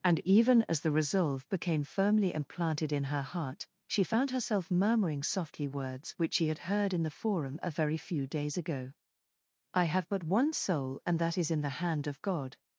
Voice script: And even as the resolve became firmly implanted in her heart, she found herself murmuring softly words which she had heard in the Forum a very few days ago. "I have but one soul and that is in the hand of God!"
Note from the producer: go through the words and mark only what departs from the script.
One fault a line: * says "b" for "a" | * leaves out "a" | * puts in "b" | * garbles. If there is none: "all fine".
all fine